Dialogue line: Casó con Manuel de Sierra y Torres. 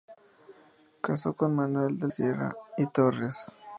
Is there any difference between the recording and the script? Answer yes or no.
no